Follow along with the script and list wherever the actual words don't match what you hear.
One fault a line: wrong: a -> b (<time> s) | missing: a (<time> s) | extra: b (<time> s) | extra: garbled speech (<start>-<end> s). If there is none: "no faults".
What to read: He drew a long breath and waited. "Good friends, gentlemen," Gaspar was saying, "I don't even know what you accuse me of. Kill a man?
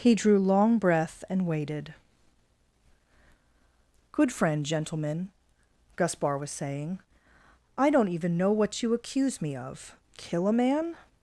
missing: a (0.4 s)
wrong: friends -> friend (4.3 s)